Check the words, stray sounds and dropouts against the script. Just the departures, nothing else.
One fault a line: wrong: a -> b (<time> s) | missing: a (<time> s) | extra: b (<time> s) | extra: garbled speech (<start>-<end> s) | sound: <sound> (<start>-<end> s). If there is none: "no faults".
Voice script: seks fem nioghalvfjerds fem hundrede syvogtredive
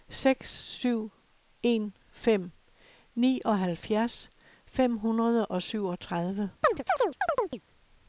extra: syv en (0.5 s)
extra: og (5.5 s)
sound: chirp (6.6-7.6 s)